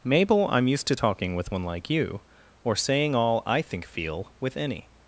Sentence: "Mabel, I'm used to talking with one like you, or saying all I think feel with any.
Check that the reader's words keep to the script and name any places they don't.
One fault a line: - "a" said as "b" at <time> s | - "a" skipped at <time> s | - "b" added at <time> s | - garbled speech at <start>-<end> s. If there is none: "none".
none